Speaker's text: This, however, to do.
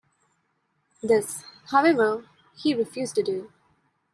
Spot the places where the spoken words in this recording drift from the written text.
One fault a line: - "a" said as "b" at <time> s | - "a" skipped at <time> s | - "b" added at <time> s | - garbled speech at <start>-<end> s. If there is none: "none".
- "he refused" added at 2.5 s